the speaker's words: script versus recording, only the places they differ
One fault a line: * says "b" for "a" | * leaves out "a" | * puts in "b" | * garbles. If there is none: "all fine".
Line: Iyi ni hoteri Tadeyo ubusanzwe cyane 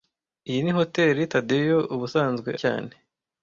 all fine